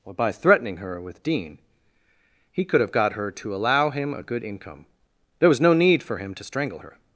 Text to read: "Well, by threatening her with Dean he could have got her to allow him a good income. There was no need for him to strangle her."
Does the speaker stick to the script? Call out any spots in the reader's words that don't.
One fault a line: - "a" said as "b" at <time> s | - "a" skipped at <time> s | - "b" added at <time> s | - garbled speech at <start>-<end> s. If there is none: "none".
- "Well" said as "Or" at 0.0 s